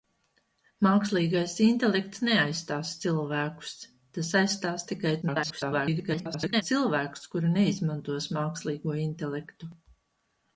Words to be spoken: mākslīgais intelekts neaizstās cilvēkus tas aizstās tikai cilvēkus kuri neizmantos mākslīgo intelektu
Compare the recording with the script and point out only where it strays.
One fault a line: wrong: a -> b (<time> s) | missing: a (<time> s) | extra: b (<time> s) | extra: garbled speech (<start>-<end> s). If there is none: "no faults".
extra: garbled speech (5.2-6.6 s)